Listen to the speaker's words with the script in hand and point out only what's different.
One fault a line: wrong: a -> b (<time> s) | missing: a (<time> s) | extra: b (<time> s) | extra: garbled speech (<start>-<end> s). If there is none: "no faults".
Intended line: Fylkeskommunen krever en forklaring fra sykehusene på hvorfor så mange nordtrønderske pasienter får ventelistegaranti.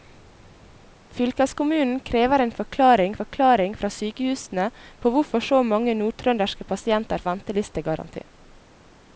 extra: forklaring (3.2 s)
missing: får (7.2 s)